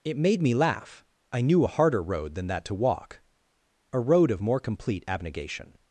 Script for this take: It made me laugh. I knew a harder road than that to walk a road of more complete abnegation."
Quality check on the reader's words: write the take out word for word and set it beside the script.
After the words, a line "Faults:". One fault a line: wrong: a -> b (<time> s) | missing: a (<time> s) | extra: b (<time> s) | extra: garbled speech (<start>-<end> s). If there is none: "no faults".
It made me laugh. I knew a harder road than that to walk a road of more complete abnegation."
Faults:
no faults